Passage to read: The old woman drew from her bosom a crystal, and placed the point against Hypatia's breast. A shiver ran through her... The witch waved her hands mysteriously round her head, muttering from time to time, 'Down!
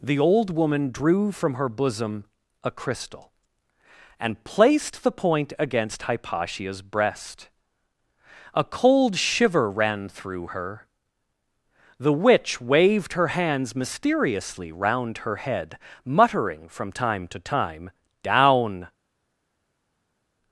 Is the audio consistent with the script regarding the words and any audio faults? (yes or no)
no